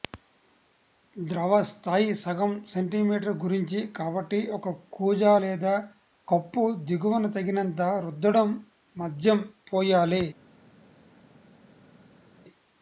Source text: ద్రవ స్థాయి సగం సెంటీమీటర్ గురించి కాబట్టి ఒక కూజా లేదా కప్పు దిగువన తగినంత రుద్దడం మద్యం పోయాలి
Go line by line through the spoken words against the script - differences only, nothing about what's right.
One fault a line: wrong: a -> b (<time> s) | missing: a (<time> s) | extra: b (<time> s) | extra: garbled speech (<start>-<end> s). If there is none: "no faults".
no faults